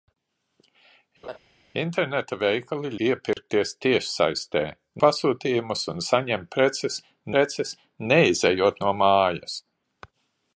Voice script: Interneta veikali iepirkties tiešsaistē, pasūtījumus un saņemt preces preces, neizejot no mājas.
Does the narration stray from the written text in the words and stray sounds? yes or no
yes